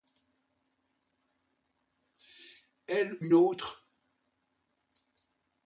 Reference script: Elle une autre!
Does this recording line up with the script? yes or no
yes